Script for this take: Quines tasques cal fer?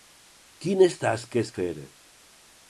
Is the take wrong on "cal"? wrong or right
wrong